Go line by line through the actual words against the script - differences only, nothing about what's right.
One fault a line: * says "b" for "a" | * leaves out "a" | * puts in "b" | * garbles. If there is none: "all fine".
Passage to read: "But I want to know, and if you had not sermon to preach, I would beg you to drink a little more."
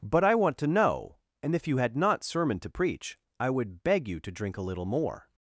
all fine